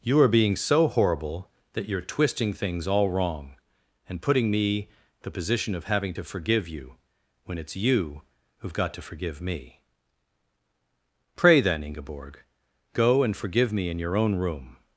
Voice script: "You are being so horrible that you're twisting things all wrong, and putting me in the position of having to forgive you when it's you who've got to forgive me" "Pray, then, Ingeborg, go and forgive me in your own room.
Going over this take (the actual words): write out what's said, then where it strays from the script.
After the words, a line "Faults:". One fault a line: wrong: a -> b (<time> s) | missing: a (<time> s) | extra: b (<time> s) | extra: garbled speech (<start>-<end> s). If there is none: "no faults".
"You are being so horrible that you're twisting things all wrong, and putting me the position of having to forgive you when it's you who've got to forgive me" "Pray, then, Ingeborg, go and forgive me in your own room.
Faults:
missing: in (4.9 s)